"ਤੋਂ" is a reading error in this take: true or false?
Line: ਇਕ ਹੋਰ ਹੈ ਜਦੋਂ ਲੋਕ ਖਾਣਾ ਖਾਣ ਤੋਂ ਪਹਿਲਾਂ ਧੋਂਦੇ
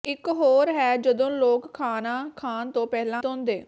false